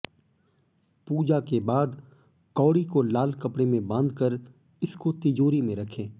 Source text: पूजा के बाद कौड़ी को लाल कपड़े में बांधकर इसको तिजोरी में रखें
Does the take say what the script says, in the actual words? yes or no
yes